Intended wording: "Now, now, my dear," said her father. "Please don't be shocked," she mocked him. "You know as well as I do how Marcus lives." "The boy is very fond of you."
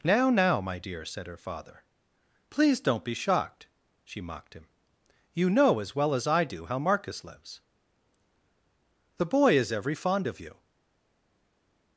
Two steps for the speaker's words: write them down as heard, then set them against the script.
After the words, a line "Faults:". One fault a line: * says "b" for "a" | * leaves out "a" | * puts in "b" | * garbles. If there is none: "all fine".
"Now, now, my dear," said her father. "Please don't be shocked," she mocked him. "You know as well as I do how Marcus lives." "The boy is every fond of you."
Faults:
* says "every" for "very"